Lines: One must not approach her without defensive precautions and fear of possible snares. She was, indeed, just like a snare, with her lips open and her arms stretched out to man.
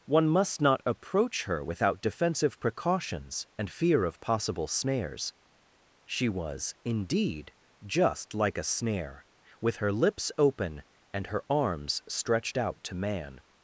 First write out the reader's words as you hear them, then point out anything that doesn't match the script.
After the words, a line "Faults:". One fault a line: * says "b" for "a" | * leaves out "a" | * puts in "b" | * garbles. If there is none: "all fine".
One must not approach her without defensive precautions and fear of possible snares. She was, indeed, just like a snare, with her lips open and her arms stretched out to man.
Faults:
all fine